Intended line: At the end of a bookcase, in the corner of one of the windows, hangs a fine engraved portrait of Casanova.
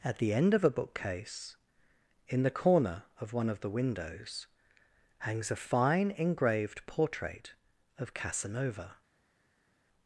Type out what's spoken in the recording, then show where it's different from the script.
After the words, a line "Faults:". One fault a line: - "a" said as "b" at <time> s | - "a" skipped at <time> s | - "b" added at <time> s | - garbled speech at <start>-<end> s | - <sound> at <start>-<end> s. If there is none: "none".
At the end of a bookcase, in the corner of one of the windows, hangs a fine engraved portrait of Casanova.
Faults:
none